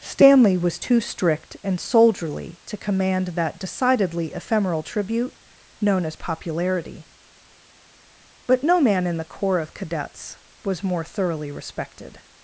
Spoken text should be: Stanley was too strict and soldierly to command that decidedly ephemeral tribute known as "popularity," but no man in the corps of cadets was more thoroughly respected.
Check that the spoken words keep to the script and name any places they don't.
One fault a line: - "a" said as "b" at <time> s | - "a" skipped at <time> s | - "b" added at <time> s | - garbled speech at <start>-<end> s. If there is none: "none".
none